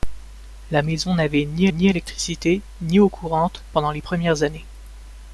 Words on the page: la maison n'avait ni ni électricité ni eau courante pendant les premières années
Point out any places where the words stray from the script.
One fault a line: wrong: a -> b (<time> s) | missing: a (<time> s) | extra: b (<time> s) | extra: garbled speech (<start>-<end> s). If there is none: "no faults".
no faults